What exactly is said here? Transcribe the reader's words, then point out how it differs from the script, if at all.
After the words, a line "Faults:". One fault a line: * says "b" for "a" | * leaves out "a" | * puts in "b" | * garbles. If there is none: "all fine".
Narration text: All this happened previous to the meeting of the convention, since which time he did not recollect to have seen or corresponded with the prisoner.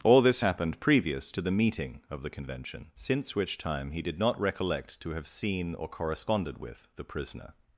All this happened previous to the meeting of the convention, since which time he did not recollect to have seen or corresponded with the prisoner.
Faults:
all fine